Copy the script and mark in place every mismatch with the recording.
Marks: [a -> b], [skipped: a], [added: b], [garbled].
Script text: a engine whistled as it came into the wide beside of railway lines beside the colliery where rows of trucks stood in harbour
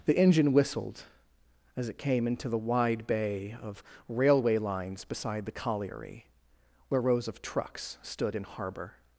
[a -> the] engine whistled as it came into the wide [beside -> bay] of railway lines beside the colliery where rows of trucks stood in harbour